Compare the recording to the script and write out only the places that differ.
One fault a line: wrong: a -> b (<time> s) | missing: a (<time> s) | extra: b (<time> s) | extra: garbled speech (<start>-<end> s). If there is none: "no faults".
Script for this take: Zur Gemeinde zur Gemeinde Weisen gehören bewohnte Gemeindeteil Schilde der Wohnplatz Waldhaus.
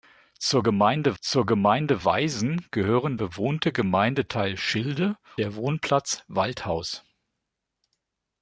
no faults